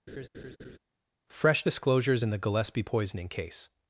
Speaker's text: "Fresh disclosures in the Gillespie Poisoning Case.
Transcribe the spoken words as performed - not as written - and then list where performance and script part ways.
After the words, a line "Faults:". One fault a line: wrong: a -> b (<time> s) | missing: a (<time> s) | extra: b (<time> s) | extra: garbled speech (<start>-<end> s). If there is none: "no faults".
"Fresh disclosures in the Gillespie Poisoning Case.
Faults:
no faults